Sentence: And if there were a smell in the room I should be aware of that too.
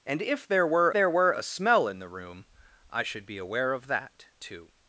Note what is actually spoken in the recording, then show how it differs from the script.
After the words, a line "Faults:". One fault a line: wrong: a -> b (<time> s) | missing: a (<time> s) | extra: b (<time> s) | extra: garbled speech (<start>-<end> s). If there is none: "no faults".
And if there were there were a smell in the room I should be aware of that too.
Faults:
extra: there were (0.9 s)